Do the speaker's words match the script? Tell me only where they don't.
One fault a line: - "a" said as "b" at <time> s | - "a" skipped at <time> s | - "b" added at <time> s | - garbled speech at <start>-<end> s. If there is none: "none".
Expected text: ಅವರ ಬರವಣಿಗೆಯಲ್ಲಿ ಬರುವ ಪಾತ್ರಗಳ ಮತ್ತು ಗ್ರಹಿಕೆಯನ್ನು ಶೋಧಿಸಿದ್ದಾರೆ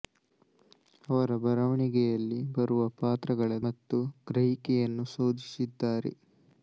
none